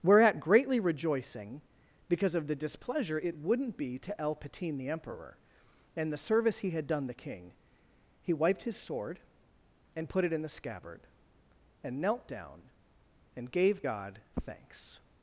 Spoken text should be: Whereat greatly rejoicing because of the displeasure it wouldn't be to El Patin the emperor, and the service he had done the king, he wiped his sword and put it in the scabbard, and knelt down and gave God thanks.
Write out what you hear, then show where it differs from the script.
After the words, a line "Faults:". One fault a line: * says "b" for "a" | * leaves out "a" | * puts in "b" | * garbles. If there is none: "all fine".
Whereat greatly rejoicing because of the displeasure it wouldn't be to El Patin the emperor, and the service he had done the king, he wiped his sword and put it in the scabbard, and knelt down and gave God thanks.
Faults:
all fine